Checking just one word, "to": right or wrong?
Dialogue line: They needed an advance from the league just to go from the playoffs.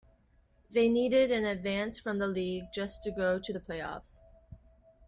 right